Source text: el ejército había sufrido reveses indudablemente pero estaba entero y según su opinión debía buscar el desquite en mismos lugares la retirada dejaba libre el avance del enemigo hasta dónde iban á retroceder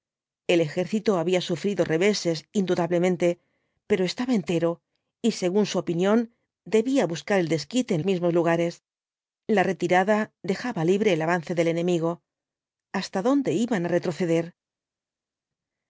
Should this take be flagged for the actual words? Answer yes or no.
no